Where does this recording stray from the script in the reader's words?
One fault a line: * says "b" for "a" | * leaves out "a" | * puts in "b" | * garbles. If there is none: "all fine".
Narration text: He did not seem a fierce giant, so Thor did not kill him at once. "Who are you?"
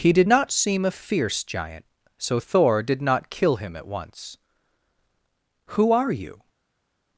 all fine